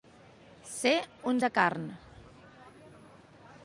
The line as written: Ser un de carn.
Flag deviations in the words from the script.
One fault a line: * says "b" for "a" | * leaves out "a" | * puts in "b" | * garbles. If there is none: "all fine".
all fine